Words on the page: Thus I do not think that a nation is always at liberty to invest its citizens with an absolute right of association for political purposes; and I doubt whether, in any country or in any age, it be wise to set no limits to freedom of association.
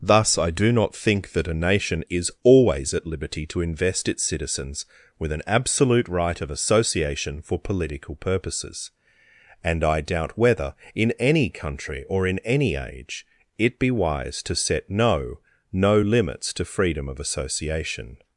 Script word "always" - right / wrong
right